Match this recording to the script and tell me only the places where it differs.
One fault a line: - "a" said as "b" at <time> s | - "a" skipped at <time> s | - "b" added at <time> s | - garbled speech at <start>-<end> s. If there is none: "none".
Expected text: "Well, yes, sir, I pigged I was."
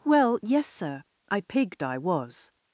none